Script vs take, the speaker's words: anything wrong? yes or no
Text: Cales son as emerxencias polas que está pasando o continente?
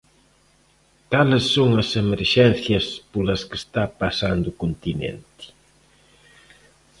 no